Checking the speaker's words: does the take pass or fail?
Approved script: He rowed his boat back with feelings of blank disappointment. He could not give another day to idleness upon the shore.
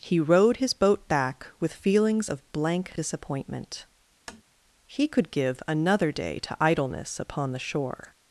fail